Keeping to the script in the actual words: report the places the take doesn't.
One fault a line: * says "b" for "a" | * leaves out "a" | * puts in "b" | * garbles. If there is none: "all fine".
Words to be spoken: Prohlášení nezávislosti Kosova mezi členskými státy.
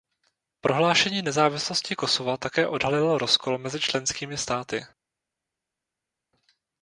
* puts in "také odhalilo rozkol"